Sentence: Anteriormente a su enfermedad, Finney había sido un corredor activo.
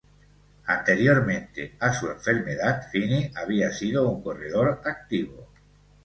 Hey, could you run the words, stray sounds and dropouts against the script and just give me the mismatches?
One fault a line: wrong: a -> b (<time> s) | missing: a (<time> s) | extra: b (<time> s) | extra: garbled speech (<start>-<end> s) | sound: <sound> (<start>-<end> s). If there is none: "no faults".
no faults